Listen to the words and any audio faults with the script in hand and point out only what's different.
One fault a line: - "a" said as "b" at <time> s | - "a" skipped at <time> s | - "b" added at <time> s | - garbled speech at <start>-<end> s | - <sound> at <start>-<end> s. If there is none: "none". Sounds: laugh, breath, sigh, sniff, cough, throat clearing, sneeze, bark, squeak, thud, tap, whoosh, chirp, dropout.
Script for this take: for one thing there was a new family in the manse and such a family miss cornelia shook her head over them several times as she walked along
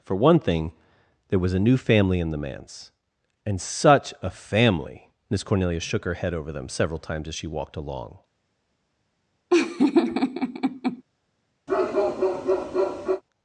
- laugh at 9.5-11.0 s
- bark at 11.7-13.2 s